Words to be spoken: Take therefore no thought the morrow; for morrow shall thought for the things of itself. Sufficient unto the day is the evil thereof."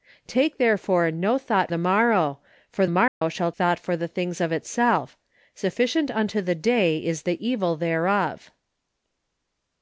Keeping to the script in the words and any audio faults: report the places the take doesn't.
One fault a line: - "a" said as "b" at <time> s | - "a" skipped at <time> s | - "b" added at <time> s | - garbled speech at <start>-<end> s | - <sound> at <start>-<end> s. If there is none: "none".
- dropout at 3.1-3.2 s